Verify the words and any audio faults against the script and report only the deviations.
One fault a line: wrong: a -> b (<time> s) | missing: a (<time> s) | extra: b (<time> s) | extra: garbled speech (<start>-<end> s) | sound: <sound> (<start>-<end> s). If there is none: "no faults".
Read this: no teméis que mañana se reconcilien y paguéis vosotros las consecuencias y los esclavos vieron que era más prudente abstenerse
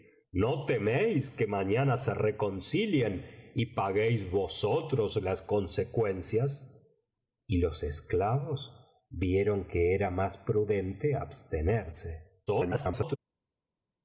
extra: garbled speech (12.5-13.2 s)